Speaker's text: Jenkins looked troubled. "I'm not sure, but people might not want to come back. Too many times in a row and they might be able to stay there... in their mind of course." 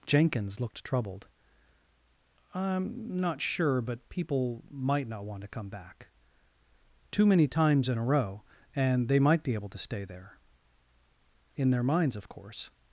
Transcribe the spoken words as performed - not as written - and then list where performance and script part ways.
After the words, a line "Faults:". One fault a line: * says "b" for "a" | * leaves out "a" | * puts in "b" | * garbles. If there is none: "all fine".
Jenkins looked troubled. "I'm not sure, but people might not want to come back. Too many times in a row and they might be able to stay there... in their minds of course."
Faults:
* says "minds" for "mind"